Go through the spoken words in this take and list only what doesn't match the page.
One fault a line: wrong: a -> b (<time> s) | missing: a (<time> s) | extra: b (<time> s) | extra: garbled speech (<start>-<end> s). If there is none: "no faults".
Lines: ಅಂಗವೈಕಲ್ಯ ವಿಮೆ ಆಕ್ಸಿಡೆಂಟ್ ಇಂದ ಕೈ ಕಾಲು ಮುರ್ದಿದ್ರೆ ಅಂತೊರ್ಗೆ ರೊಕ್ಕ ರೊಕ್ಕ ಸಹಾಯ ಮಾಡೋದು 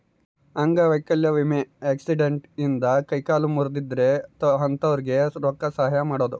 missing: ರೊಕ್ಕ (5.7 s)